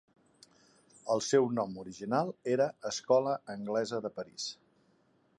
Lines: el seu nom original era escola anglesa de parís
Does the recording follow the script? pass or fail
pass